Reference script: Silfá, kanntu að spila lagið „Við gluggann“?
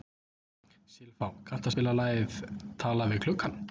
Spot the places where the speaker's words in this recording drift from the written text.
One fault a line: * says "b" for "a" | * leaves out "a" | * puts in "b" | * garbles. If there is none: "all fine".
* puts in "Talað"